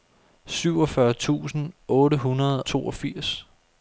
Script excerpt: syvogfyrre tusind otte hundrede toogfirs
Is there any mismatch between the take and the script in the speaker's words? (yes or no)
no